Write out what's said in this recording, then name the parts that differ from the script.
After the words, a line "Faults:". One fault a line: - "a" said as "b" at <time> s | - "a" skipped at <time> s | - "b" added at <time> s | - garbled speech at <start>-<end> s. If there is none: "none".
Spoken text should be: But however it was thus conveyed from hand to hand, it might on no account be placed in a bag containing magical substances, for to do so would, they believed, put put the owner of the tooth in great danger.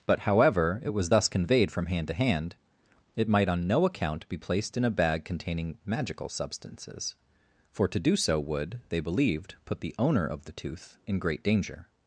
But however it was thus conveyed from hand to hand, it might on no account be placed in a bag containing magical substances, for to do so would, they believed, put the owner of the tooth in great danger.
Faults:
- "put" skipped at 9.8 s